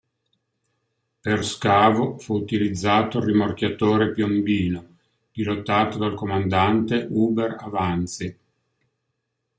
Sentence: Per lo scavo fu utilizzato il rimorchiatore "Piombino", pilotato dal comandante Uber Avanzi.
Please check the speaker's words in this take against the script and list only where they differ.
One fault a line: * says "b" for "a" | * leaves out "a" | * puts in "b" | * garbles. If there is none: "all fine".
* leaves out "lo"